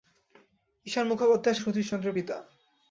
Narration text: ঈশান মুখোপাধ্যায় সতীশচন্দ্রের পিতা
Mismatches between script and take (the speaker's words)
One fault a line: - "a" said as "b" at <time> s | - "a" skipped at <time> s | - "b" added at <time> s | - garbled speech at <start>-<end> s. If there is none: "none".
none